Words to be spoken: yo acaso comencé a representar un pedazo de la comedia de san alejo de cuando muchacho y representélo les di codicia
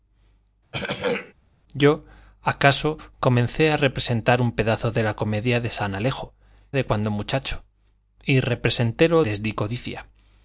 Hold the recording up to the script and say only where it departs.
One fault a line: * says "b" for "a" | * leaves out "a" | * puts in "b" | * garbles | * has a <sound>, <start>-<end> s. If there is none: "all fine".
* has a throat clearing, 0.7-1.3 s